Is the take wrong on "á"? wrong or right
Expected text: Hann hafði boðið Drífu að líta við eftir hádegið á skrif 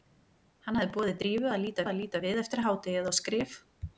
right